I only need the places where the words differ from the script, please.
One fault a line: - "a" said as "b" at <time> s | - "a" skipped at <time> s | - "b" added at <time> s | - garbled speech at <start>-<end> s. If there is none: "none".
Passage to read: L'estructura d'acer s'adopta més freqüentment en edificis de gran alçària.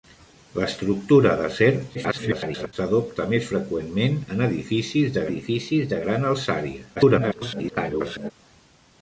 - garbled speech at 1.9-2.7 s
- "edificis de" added at 5.3 s
- garbled speech at 7.0-8.3 s